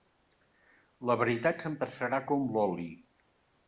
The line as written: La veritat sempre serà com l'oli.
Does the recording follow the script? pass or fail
pass